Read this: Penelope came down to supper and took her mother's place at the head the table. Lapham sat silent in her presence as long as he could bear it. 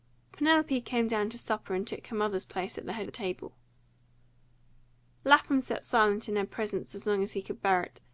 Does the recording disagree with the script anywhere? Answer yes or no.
no